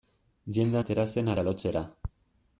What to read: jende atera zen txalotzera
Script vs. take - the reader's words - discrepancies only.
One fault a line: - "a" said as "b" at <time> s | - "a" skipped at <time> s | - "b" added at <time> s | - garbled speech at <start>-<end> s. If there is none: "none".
none